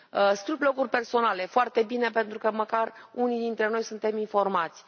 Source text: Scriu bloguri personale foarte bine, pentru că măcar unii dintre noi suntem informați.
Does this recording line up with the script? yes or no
yes